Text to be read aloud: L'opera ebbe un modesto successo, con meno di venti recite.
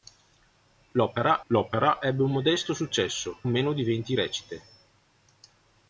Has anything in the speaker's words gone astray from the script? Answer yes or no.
yes